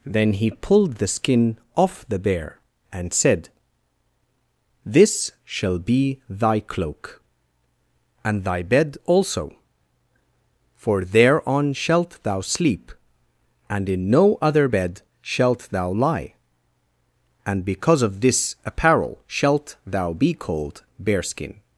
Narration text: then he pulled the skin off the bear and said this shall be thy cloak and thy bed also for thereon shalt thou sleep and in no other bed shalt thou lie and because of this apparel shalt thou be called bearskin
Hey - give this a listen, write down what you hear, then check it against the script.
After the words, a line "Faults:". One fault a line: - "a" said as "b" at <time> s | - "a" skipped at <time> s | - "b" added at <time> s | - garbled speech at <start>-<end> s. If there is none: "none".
then he pulled the skin off the bear and said this shall be thy cloak and thy bed also for thereon shalt thou sleep and in no other bed shalt thou lie and because of this apparel shalt thou be called bearskin
Faults:
none